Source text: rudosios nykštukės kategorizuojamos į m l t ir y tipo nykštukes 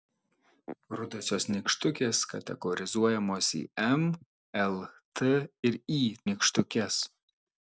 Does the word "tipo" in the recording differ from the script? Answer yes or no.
yes